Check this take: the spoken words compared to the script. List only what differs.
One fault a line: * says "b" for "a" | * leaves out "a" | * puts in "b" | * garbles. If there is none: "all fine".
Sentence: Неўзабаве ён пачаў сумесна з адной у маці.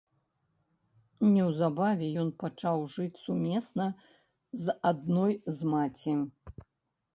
* puts in "жыць"
* says "з" for "у"